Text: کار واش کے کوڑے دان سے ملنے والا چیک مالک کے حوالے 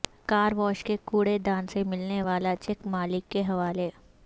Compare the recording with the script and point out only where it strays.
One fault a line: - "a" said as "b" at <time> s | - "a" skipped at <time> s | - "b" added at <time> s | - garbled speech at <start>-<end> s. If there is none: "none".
none